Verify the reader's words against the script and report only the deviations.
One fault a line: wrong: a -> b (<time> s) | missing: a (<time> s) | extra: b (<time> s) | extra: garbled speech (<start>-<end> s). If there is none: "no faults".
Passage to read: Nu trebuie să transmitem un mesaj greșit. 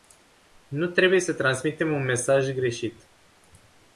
no faults